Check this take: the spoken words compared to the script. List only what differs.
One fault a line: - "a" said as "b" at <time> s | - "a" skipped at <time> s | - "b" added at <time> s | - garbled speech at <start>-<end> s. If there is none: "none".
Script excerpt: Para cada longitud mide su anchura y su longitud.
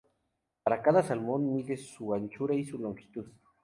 - "longitud" said as "salmón" at 1.0 s